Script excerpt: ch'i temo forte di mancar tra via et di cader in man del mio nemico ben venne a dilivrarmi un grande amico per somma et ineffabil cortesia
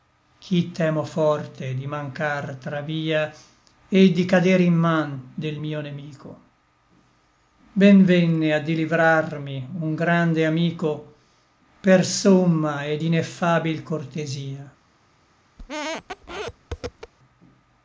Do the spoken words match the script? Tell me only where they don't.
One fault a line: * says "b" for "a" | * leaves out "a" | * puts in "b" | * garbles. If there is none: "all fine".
all fine